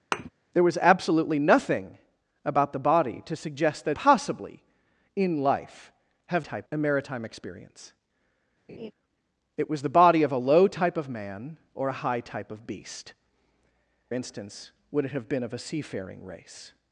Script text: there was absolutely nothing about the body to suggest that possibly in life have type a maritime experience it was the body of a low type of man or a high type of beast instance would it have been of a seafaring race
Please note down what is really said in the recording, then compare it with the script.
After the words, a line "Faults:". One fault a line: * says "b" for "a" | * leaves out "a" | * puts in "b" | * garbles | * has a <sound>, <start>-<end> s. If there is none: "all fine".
there was absolutely nothing about the body to suggest that possibly in life have type a maritime experience it was the body of a low type of man or a high type of beast instance would it have been of a seafaring race
Faults:
* has a thud, 0.1-0.3 s
* has a laugh, 8.7-8.9 s